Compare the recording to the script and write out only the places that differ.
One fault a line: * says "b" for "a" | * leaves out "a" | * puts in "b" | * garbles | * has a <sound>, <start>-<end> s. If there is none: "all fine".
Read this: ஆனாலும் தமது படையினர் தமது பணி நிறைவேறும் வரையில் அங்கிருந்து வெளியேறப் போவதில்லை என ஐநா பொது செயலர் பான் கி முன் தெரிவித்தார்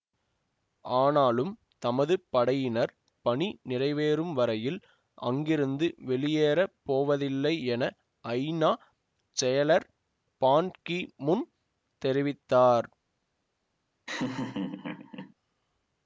* leaves out "தமது"
* leaves out "பொது"
* has a laugh, 14.1-15.3 s